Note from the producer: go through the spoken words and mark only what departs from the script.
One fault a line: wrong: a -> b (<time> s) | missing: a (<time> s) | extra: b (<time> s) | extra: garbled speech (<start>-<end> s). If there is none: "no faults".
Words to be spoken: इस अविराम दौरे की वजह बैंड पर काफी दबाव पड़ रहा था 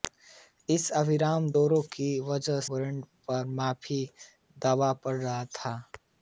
no faults